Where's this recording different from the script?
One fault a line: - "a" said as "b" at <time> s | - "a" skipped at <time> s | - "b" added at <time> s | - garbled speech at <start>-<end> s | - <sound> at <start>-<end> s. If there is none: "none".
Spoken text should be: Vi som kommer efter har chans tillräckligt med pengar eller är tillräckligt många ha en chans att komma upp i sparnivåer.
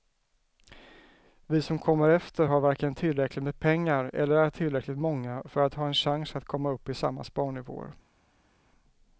- "chans" said as "varken" at 2.6 s
- "för att" added at 5.4 s
- "samma" added at 6.9 s